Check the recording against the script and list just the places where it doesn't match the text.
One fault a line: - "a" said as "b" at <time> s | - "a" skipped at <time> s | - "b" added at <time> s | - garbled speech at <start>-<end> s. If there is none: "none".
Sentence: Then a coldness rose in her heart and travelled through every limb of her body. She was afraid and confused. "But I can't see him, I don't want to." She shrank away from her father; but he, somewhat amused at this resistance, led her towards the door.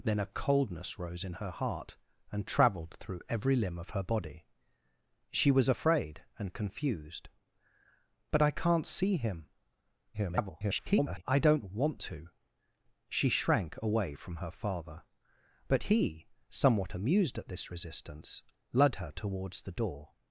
- garbled speech at 10.1-11.2 s